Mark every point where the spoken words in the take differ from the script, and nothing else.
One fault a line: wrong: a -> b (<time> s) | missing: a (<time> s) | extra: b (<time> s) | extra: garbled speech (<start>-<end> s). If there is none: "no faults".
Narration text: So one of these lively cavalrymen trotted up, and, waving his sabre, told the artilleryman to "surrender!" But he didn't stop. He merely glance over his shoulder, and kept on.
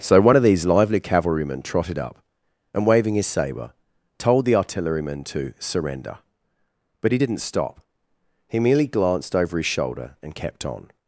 wrong: glance -> glanced (8.9 s)